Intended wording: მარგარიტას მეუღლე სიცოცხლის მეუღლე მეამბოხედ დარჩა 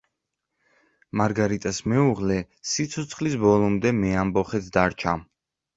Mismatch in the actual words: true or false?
true